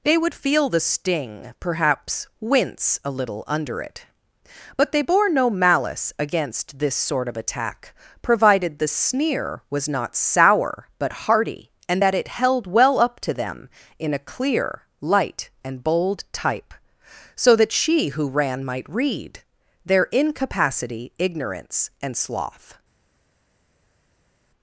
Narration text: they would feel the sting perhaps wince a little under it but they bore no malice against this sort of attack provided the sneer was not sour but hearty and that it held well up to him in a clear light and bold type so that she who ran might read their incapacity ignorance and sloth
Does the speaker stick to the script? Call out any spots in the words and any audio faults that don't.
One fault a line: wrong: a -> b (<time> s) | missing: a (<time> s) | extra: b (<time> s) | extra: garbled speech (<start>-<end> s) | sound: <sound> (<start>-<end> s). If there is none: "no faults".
wrong: him -> them (13.3 s)